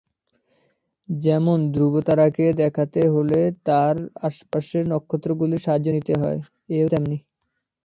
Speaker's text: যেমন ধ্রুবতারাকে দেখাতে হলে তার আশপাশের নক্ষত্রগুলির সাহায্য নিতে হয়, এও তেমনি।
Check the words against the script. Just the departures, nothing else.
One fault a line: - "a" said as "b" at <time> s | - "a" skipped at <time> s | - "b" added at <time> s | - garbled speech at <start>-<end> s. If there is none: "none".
none